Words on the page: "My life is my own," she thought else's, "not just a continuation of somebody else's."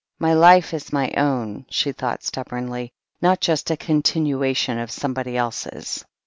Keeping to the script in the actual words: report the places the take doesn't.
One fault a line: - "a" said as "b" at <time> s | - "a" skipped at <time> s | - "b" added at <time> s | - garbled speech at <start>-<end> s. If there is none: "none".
- "else's" said as "stubbornly" at 2.2 s